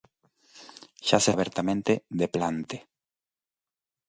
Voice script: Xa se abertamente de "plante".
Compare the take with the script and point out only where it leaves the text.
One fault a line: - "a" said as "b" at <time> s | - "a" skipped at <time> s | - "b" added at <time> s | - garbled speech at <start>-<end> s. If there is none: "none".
none